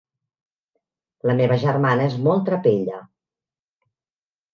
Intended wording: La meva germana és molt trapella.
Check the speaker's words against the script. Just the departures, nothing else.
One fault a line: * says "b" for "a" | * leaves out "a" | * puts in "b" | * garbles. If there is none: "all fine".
all fine